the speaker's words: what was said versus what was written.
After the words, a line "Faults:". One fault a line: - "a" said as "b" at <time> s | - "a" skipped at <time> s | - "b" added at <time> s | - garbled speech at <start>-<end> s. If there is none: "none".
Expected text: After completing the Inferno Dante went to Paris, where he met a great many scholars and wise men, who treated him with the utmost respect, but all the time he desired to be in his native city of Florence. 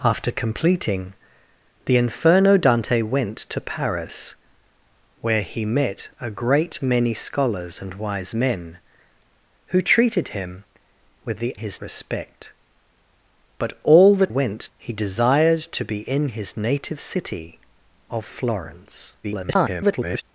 After completing the Inferno Dante went to Paris, where he met a great many scholars and wise men, who treated him with the his respect, but all the went he desired to be in his native city of Florence. [garbled]
Faults:
- "utmost" said as "his" at 11.5 s
- "time" said as "went" at 14.3 s
- garbled speech at 19.2-20.2 s